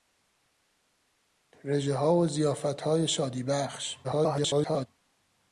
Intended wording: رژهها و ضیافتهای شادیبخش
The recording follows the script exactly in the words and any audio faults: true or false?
false